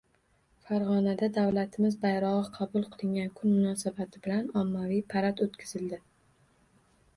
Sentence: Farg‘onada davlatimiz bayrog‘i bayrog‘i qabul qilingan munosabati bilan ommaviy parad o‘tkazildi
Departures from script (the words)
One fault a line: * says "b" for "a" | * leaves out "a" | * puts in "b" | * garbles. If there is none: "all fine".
* leaves out "bayrog‘i"
* puts in "kun"